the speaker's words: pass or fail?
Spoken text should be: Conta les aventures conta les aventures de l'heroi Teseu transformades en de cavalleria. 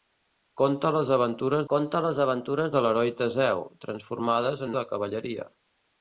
pass